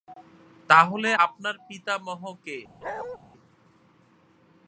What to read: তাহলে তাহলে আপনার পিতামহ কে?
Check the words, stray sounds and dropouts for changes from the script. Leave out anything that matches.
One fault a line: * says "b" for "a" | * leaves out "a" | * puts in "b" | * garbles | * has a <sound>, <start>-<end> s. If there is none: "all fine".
* leaves out "তাহলে"
* has a bark, 2.8-3.2 s